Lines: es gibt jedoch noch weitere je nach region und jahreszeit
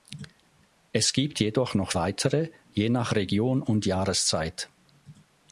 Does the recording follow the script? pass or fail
pass